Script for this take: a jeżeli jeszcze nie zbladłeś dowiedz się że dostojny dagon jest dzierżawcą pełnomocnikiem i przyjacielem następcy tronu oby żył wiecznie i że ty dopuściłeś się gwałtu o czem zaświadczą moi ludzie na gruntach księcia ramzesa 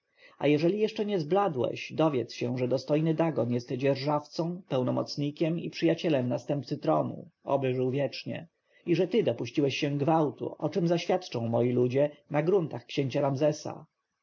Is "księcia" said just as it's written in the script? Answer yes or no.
yes